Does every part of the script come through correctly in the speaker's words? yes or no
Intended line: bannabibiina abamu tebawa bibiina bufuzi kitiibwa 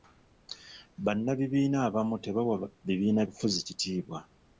yes